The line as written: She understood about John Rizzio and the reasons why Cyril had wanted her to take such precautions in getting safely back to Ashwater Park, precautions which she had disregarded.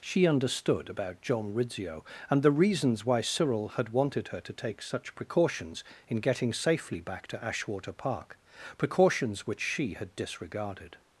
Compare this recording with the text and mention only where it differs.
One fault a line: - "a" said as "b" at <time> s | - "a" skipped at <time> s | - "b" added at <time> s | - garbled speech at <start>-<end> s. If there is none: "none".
none